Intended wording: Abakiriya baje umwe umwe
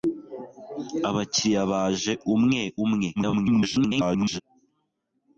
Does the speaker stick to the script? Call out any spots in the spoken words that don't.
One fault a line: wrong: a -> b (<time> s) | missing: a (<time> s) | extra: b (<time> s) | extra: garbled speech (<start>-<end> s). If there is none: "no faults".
extra: garbled speech (3.2-4.4 s)